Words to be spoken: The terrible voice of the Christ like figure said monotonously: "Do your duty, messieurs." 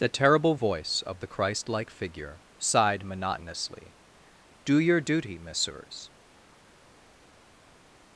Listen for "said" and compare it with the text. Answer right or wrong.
wrong